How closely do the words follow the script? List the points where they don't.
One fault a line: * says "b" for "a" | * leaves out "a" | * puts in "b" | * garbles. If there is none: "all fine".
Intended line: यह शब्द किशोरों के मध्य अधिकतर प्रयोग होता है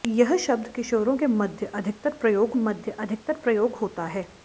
* puts in "मध्य अधिकतर प्रयोग"